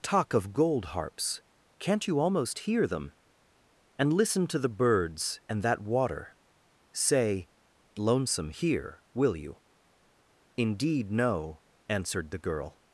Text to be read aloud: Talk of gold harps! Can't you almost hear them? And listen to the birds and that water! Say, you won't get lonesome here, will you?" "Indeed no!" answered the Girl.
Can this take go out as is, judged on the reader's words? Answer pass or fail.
fail